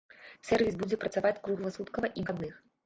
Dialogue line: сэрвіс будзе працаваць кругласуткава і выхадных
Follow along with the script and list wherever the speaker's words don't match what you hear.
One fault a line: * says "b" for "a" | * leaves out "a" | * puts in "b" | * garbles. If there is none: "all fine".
all fine